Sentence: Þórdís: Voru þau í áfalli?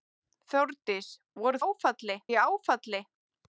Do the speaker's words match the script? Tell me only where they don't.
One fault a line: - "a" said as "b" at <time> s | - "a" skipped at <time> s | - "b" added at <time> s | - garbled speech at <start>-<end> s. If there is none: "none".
- "þau" said as "áfalli" at 1.6 s